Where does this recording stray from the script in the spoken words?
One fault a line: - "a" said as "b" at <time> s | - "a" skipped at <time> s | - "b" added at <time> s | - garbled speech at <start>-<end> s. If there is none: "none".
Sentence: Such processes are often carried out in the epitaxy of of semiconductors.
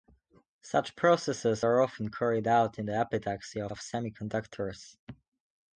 none